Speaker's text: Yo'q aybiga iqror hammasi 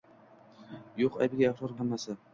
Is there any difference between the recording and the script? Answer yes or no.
no